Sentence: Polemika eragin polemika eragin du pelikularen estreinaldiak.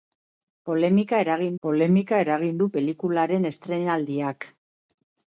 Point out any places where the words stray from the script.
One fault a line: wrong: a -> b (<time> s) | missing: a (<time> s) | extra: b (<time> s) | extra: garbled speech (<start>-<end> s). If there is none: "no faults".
no faults